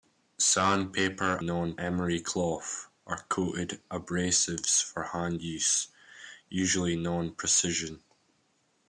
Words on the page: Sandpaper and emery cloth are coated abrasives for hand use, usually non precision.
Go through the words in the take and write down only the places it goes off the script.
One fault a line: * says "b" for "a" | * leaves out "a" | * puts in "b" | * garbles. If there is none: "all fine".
* says "non" for "and"